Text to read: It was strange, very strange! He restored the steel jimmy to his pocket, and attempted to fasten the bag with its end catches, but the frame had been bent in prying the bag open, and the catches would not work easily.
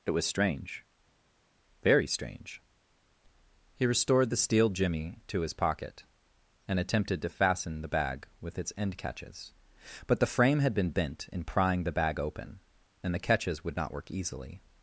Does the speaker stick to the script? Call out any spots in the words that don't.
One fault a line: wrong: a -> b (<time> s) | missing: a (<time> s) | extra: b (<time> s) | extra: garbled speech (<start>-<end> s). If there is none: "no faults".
no faults